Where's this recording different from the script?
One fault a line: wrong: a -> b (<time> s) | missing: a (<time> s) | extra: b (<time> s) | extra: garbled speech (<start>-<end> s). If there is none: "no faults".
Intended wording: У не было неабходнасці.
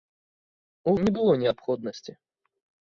no faults